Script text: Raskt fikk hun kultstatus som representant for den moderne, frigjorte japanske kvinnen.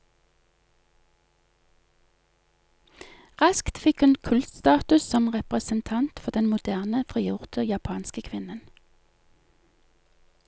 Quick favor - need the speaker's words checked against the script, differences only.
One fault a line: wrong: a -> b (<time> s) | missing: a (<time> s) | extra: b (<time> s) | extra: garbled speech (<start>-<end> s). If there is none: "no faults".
no faults